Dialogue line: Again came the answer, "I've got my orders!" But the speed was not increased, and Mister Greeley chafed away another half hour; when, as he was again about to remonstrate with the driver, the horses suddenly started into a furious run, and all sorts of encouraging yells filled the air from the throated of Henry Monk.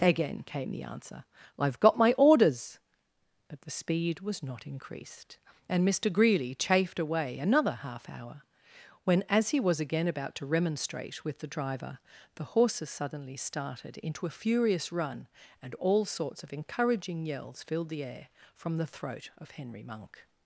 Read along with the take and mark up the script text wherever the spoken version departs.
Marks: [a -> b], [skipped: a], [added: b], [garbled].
Again came the answer, "I've got my orders!" But the speed was not increased, and Mister Greeley chafed away another half hour; when, as he was again about to remonstrate with the driver, the horses suddenly started into a furious run, and all sorts of encouraging yells filled the air from the [throated -> throat] of Henry Monk.